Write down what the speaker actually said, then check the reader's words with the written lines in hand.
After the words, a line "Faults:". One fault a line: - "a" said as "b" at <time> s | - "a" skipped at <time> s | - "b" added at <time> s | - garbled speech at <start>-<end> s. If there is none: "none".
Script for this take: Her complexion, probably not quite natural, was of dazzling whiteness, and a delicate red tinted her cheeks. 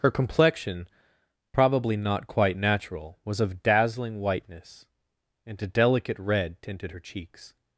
Her complexion, probably not quite natural, was of dazzling whiteness, and a delicate red tinted her cheeks.
Faults:
none